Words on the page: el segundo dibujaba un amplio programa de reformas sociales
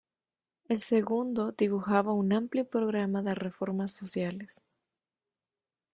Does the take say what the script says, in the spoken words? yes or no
yes